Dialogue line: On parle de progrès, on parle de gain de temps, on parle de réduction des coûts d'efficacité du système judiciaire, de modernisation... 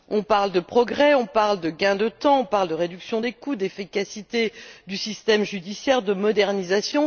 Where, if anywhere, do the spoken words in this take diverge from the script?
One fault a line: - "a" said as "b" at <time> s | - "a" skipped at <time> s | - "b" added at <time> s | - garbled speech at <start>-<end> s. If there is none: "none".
none